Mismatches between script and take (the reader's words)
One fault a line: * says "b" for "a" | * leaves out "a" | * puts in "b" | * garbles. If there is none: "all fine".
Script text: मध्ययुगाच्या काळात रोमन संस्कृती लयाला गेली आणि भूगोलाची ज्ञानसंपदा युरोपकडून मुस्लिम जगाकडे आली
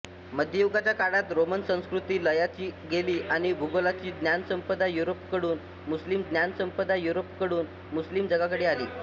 * puts in "ज्ञानसंपदा युरोपकडून मुस्लिम"